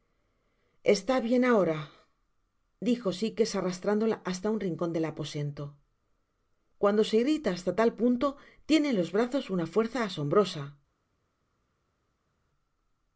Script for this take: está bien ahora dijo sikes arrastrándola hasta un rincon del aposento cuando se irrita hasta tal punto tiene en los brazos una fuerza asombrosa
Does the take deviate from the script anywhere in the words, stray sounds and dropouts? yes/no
no